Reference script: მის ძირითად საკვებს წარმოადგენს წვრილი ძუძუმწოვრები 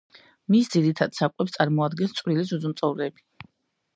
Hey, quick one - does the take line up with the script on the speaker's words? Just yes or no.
yes